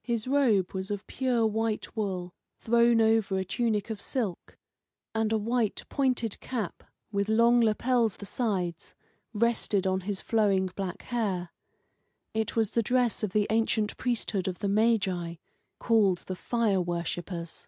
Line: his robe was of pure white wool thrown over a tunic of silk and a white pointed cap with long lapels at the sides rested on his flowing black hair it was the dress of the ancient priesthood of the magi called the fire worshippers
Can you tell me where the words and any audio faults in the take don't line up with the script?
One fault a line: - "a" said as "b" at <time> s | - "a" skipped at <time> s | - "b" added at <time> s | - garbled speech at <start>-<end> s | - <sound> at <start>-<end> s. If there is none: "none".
- "at" skipped at 8.2 s